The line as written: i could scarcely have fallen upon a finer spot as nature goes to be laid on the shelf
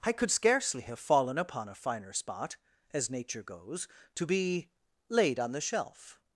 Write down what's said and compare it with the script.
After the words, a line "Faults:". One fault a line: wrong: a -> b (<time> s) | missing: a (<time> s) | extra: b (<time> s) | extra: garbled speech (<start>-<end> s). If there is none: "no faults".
i could scarcely have fallen upon a finer spot as nature goes to be laid on the shelf
Faults:
no faults